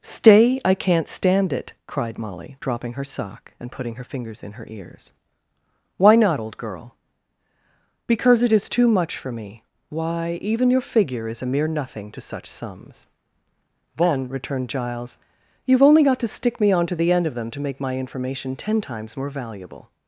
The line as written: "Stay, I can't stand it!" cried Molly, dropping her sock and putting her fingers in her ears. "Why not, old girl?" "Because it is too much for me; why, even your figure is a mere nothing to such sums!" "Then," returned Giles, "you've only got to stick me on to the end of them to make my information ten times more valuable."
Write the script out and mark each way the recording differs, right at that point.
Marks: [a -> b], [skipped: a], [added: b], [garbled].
"Stay, I can't stand it!" cried Molly, dropping her sock and putting her fingers in her ears. "Why not, old girl?" "Because it is too much for me; why, even your figure is a mere nothing to such sums!" "Then," returned Giles, "you've only got to stick me on to the end of them to make my information ten times more valuable."